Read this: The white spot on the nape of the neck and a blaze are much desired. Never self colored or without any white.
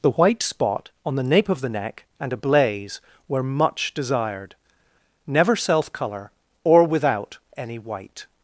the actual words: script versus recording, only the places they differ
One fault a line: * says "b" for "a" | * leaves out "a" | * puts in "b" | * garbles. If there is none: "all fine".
* says "were" for "are"
* says "color" for "colored"